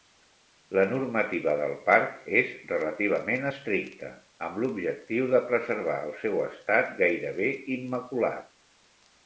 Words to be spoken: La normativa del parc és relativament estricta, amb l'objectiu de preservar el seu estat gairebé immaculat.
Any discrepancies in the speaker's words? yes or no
no